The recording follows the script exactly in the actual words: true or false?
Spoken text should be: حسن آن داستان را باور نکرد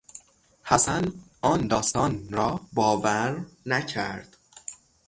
true